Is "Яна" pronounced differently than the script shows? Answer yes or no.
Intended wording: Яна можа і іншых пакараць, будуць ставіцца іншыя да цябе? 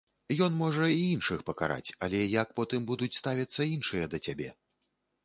yes